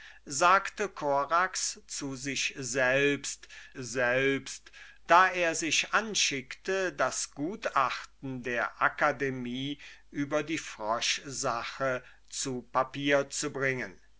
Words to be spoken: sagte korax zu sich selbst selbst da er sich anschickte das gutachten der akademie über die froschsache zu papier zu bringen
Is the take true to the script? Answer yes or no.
yes